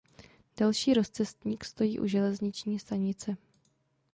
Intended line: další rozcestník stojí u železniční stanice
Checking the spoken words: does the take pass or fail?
pass